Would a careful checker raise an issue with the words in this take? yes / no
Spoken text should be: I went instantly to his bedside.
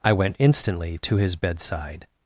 no